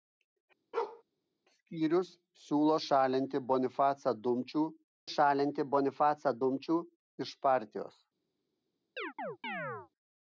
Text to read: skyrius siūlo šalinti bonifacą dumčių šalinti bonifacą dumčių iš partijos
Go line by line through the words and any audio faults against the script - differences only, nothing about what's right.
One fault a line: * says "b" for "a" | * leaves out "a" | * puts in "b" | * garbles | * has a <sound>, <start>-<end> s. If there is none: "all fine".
* has a bark, 0.7-1.0 s
* has a chirp, 9.0-9.9 s